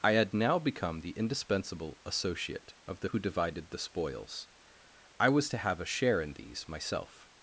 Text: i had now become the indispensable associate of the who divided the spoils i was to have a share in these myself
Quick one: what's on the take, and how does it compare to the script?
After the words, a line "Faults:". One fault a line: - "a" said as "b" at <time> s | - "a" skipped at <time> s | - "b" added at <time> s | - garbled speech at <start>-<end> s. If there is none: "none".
i had now become the indispensable associate of the who divided the spoils i was to have a share in these myself
Faults:
none